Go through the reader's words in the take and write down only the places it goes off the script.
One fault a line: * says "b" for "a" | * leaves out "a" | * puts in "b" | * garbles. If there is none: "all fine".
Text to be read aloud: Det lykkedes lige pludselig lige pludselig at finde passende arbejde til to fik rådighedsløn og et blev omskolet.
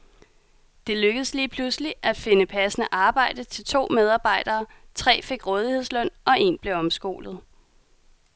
* leaves out "lige pludselig"
* puts in "medarbejdere tre"
* says "en" for "et"